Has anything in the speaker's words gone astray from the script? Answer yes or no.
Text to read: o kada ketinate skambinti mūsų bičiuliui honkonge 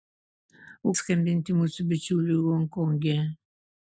yes